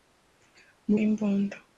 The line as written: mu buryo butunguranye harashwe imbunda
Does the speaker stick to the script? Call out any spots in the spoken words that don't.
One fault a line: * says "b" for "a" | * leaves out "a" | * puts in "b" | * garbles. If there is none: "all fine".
* leaves out "buryo butunguranye harashwe"